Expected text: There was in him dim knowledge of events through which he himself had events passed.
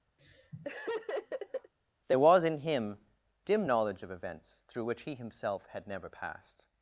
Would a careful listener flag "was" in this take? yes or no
no